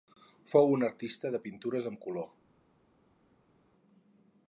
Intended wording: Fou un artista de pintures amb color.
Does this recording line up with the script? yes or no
yes